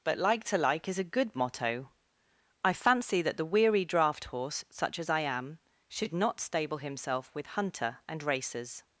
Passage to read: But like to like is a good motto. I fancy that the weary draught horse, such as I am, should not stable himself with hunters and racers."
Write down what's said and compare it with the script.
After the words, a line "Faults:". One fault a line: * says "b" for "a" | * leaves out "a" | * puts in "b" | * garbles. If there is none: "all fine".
But like to like is a good motto. I fancy that the weary draught horse, such as I am, should not stable himself with hunter and racers."
Faults:
* says "hunter" for "hunters"